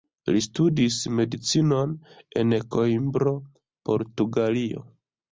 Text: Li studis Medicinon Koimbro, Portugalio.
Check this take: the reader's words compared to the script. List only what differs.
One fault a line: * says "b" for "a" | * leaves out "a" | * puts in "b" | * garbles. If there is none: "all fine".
* puts in "en"